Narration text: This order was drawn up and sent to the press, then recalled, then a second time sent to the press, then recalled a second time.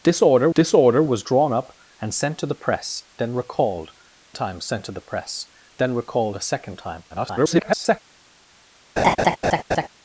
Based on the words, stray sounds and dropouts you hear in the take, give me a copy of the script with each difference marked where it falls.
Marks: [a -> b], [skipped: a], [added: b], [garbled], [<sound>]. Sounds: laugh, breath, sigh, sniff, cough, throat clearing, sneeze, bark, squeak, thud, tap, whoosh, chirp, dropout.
This order [added: this order] was drawn up and sent to the press, then recalled, [skipped: then a second] time sent to the press, then recalled a second time. [garbled] [laugh]